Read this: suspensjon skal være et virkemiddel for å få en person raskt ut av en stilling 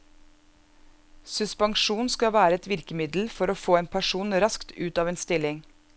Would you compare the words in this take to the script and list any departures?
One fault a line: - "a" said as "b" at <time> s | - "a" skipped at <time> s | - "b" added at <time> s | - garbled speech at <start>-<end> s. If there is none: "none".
none